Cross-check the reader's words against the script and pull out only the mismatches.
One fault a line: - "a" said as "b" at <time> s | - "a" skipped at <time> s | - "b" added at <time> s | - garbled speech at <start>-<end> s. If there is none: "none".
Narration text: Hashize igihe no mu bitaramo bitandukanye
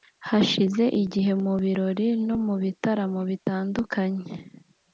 - "mu birori" added at 1.4 s